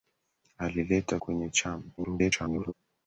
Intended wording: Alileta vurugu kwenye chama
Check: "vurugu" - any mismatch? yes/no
yes